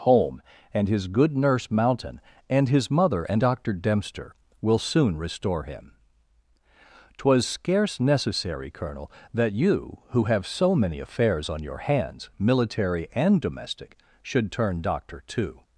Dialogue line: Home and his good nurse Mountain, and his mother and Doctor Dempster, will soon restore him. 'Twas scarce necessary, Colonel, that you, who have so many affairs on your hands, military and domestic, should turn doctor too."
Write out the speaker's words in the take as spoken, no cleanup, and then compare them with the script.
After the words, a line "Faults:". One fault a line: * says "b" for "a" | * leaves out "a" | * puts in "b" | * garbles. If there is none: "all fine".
Home and his good nurse Mountain, and his mother and Doctor Dempster, will soon restore him. 'Twas scarce necessary, Colonel, that you, who have so many affairs on your hands, military and domestic, should turn doctor too."
Faults:
all fine